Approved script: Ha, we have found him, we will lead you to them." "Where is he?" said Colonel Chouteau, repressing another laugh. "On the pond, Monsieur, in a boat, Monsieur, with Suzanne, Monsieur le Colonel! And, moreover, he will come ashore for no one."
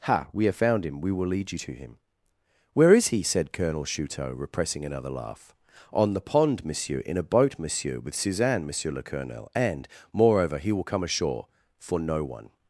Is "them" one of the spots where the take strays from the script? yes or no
yes